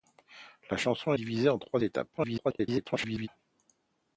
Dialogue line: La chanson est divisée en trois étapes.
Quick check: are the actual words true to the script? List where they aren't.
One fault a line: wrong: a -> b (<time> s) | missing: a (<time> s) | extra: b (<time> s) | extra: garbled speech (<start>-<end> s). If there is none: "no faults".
missing: est (1.1 s)
extra: garbled speech (2.2-3.3 s)